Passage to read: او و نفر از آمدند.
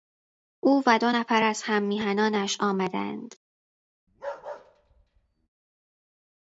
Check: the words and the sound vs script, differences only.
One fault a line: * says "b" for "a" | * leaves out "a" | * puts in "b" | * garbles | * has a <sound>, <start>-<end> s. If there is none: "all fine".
* puts in "دو"
* puts in "هممیهنانش"
* has a bark, 4.1-5.5 s